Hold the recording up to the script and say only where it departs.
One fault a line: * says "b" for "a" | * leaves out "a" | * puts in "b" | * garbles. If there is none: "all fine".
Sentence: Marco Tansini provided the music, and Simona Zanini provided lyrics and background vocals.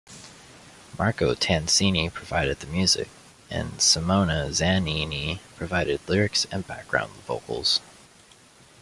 all fine